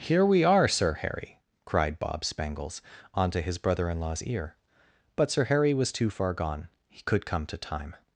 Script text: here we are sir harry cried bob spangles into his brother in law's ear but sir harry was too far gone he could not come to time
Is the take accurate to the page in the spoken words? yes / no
no